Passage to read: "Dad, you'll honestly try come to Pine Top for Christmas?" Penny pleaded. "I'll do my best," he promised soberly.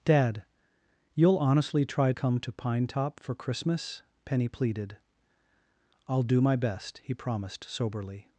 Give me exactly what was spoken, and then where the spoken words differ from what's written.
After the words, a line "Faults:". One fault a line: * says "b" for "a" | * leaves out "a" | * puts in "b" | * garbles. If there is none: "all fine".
"Dad, you'll honestly try come to Pine Top for Christmas?" Penny pleaded. "I'll do my best," he promised soberly.
Faults:
all fine